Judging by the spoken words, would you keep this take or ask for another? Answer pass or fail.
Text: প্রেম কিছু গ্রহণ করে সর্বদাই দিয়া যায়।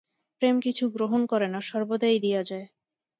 fail